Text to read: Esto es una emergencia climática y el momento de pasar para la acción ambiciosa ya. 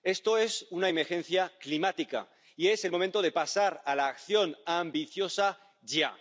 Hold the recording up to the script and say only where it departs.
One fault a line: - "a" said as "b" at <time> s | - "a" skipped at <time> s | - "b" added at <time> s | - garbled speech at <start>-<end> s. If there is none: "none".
- "es" added at 2.7 s
- "para" said as "a" at 3.8 s